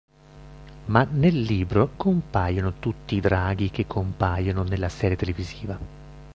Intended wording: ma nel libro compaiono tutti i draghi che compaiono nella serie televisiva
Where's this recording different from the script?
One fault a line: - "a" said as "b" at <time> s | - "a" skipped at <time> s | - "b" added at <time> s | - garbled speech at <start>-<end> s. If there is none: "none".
none